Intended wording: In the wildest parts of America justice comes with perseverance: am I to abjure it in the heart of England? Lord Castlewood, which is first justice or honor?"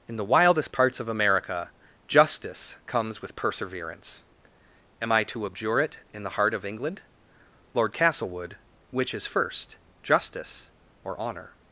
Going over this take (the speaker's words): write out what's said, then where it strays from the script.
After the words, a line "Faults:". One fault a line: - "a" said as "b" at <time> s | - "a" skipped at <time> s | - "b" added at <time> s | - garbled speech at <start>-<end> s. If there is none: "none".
In the wildest parts of America justice comes with perseverance: am I to abjure it in the heart of England? Lord Castlewood, which is first justice or honor?"
Faults:
none